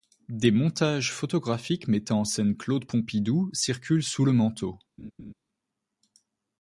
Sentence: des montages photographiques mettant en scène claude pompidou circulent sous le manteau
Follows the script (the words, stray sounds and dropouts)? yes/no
no